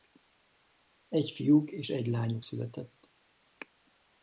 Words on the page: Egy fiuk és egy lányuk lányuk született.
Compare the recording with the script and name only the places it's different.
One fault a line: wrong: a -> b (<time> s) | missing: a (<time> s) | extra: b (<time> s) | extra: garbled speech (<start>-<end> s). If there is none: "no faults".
missing: lányuk (2.5 s)